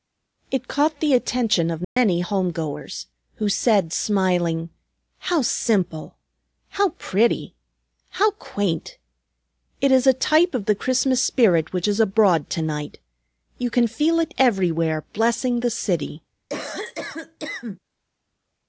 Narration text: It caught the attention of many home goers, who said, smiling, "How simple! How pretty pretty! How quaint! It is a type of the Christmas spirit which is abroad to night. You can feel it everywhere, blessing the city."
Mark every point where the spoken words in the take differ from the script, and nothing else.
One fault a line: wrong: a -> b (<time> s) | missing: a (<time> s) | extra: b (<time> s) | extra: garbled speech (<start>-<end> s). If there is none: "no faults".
missing: pretty (7.6 s)